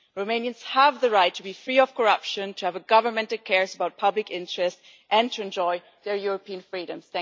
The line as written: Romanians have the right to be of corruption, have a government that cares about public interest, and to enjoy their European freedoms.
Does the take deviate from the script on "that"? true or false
false